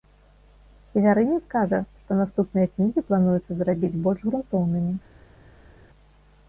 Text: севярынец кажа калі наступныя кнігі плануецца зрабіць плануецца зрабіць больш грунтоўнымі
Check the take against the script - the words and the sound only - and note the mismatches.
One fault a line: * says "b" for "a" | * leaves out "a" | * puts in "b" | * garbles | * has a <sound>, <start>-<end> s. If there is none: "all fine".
* says "што" for "калі"
* leaves out "плануецца зрабіць"